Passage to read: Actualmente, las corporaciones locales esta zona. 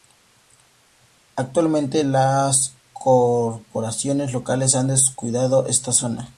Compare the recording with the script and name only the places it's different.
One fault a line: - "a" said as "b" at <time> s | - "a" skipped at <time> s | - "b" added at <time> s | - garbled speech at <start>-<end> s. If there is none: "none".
- "han descuidado" added at 4.7 s